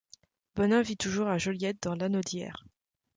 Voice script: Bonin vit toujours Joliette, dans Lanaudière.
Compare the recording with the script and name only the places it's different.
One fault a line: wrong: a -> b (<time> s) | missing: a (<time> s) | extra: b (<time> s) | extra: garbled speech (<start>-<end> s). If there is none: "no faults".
extra: à (1.3 s)